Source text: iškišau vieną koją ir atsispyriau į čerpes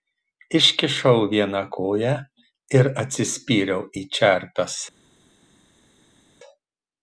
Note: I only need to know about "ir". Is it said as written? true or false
true